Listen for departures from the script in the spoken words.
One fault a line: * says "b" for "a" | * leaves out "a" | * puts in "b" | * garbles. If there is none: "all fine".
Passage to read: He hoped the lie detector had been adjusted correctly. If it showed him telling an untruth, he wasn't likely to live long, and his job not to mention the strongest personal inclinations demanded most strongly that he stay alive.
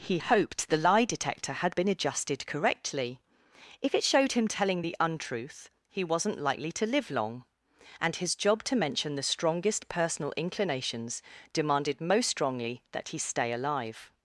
* says "the" for "an"
* leaves out "not"